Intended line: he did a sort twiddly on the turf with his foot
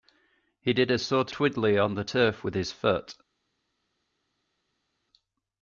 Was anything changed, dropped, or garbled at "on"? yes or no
no